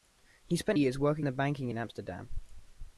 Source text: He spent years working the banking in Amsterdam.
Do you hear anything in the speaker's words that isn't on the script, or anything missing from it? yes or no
no